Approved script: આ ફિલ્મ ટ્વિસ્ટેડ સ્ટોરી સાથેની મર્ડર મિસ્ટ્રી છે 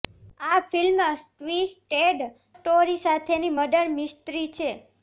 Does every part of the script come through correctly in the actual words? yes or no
yes